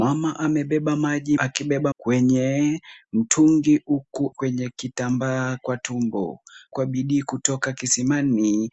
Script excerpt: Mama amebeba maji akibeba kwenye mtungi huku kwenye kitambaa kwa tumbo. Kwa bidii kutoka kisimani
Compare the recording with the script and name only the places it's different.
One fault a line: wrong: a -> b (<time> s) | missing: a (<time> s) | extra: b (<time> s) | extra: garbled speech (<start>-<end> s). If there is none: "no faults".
no faults